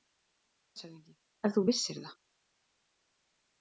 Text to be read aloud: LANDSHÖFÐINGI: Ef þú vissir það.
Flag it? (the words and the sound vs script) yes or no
no